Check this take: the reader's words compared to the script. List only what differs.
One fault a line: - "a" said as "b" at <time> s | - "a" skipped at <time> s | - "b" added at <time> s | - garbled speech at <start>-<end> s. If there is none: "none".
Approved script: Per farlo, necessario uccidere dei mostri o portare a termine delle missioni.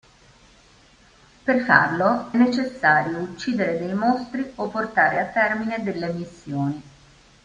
none